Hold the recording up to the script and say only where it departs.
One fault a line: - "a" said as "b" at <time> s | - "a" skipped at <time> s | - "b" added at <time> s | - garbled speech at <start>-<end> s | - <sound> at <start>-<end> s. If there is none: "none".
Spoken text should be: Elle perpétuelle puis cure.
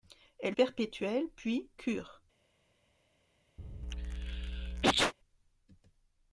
- sneeze at 3.6-5.1 s